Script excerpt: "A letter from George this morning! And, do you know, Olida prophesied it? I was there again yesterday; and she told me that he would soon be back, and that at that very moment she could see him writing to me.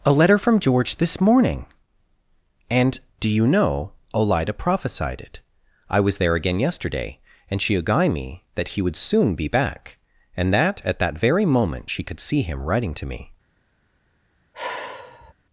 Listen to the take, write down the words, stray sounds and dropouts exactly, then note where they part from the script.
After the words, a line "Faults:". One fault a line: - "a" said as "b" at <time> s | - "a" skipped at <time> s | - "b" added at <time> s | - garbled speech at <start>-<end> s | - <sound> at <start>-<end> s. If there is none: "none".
"A letter from George this morning! And, do you know, Olida prophesied it? I was there again yesterday; and she agai me that he would soon be back, and that at that very moment she could see him writing to me.
Faults:
- "told" said as "agai" at 7.8 s
- sigh at 14.5-15.3 s